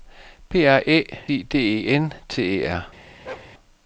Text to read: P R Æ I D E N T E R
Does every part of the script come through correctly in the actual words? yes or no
yes